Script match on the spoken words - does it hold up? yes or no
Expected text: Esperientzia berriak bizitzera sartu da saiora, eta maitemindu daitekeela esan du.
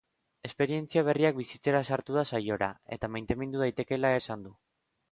yes